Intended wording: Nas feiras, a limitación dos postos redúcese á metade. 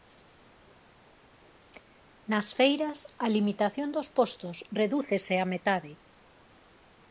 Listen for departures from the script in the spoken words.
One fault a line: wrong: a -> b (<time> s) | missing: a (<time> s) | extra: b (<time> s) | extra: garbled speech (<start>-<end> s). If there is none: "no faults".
no faults